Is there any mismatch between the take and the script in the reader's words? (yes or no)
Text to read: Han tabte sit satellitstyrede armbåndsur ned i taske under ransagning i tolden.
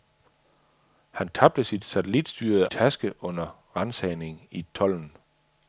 yes